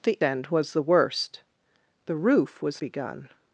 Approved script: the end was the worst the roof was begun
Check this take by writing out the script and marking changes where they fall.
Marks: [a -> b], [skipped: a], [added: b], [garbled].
the end was the worst the roof was begun